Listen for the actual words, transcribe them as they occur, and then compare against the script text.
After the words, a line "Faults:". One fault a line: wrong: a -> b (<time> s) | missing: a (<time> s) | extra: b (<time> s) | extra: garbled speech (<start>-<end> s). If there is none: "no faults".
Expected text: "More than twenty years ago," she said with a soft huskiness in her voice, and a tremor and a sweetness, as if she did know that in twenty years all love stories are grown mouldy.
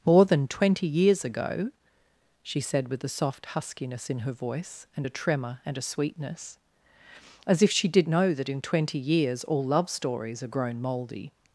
"More than twenty years ago," she said with a soft huskiness in her voice, and a tremor and a sweetness, as if she did know that in twenty years all love stories are grown mouldy.
Faults:
no faults